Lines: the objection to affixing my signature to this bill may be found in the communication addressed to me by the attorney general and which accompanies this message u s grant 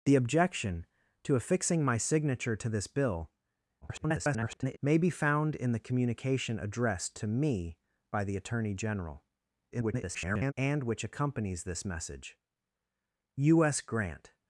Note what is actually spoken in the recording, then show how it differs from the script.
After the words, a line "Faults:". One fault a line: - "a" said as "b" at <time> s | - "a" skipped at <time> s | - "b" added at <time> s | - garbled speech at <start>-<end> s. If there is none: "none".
the objection to affixing my signature to this bill [garbled] may be found in the communication addressed to me by the attorney general [garbled] and which accompanies this message u s grant
Faults:
- garbled speech at 3.8-4.8 s
- garbled speech at 9.7-10.5 s